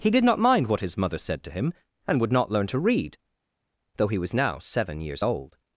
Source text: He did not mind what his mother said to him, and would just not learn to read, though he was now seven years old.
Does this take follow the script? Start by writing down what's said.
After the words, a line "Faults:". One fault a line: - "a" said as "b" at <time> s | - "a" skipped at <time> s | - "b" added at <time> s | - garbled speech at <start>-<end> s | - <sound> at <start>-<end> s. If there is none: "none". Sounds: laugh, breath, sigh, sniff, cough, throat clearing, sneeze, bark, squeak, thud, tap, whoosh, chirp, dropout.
He did not mind what his mother said to him, and would not learn to read, though he was now seven years old.
Faults:
- "just" skipped at 2.3 s